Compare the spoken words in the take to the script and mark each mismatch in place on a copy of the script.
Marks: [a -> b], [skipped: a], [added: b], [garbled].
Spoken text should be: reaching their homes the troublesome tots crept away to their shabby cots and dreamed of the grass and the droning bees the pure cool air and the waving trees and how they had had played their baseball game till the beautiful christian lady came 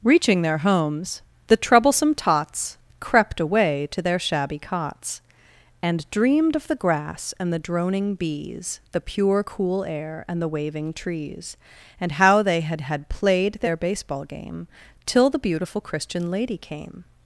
reaching their homes the troublesome tots crept away to their shabby cots and dreamed of the grass and the droning bees the pure cool air and the waving trees and how they had had played their baseball game till the beautiful christian lady came